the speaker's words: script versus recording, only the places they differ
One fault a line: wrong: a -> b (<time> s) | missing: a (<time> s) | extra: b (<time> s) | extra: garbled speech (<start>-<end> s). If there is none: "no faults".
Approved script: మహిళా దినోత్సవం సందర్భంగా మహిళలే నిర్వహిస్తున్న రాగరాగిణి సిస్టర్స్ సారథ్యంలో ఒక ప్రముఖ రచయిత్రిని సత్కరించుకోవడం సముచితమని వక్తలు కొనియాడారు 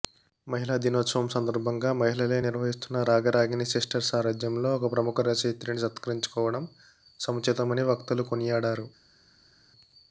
no faults